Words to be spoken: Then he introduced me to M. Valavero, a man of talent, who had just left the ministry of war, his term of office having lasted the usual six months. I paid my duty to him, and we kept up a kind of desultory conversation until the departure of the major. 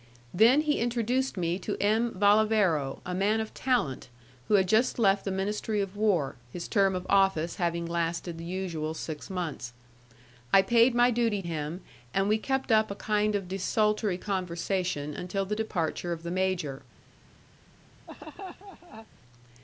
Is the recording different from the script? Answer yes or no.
yes